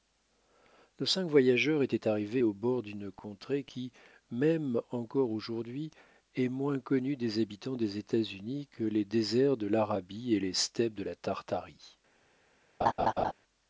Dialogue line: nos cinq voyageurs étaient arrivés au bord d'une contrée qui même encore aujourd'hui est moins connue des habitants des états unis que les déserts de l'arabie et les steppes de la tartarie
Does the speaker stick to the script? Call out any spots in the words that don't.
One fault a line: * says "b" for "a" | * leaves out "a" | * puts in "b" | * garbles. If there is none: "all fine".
all fine